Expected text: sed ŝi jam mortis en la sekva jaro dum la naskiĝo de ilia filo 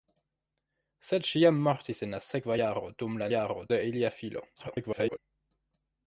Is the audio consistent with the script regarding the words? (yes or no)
no